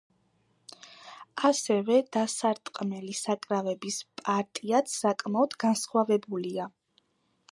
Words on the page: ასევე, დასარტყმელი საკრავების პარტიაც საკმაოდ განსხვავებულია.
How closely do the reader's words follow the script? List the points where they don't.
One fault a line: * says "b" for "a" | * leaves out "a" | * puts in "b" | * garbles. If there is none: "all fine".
all fine